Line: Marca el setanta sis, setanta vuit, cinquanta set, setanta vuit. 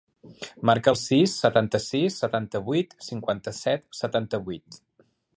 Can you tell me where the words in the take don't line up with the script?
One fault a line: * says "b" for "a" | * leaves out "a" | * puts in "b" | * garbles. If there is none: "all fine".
* puts in "sis"